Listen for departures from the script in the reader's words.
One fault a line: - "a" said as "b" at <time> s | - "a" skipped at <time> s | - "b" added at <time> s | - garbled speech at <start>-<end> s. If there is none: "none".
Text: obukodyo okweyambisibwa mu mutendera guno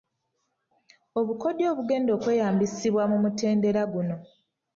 - "obugenda" added at 1.7 s